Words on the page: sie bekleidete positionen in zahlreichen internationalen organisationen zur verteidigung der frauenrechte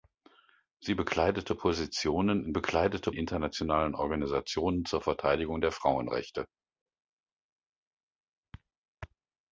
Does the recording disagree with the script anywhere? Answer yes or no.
yes